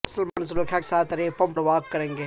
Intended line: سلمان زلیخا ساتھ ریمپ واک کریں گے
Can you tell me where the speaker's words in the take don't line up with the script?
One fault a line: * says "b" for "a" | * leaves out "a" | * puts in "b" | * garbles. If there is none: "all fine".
all fine